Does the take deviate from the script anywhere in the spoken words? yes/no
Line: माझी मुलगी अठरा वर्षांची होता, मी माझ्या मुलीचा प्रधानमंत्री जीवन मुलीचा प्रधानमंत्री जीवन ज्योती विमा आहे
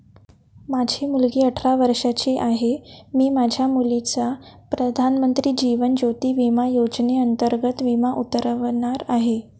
yes